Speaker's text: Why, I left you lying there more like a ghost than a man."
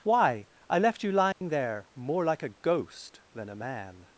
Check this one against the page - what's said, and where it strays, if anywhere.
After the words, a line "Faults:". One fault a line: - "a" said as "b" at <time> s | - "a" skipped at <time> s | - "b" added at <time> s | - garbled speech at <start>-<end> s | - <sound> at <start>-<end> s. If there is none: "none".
Why, I left you lying there more like a ghost than a man."
Faults:
- dropout at 1.3-1.4 s